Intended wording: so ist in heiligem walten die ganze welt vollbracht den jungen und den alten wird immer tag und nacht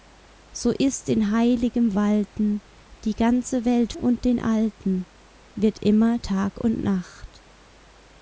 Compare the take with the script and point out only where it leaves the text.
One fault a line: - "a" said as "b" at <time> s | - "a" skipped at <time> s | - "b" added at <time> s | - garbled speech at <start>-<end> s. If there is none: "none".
- "vollbracht den jungen" skipped at 3.9 s